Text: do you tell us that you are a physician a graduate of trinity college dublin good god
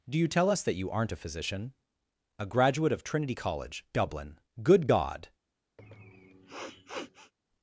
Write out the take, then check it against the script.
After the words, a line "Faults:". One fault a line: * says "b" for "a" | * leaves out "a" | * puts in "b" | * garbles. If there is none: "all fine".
do you tell us that you aren't a physician a graduate of trinity college dublin good god
Faults:
* says "aren't" for "are"